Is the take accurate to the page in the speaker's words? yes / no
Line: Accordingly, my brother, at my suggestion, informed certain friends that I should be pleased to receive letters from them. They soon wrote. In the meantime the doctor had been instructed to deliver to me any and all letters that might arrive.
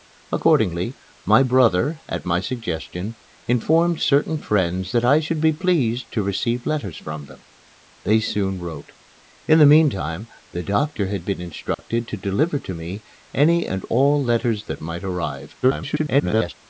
no